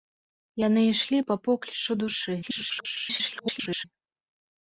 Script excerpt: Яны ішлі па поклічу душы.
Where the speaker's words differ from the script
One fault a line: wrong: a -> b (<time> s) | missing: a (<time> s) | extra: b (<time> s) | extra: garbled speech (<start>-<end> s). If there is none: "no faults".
extra: garbled speech (2.4-3.9 s)